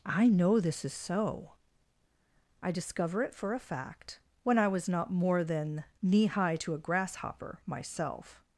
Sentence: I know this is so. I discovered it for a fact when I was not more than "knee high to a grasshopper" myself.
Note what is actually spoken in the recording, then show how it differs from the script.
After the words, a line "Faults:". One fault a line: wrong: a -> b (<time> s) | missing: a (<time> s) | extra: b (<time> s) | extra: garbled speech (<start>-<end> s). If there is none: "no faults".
I know this is so. I discover it for a fact when I was not more than "knee high to a grasshopper" myself.
Faults:
wrong: discovered -> discover (2.7 s)